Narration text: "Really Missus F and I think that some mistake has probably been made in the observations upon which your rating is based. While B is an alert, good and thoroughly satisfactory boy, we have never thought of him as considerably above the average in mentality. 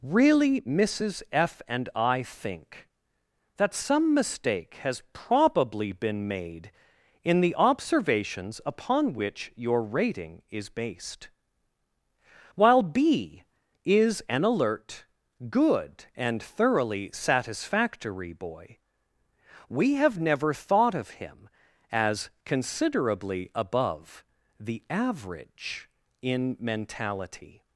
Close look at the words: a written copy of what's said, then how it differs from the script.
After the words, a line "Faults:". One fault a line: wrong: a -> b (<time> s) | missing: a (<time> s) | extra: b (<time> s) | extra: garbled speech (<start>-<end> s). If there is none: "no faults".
"Really Missus F and I think that some mistake has probably been made in the observations upon which your rating is based. While B is an alert, good and thoroughly satisfactory boy, we have never thought of him as considerably above the average in mentality.
Faults:
no faults